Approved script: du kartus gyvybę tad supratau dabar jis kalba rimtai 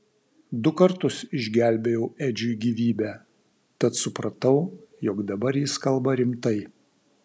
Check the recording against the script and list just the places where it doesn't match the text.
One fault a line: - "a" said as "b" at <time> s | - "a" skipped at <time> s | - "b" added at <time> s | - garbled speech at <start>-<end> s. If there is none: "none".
- "išgelbėjau edžiui" added at 1.4 s
- "jog" added at 5.1 s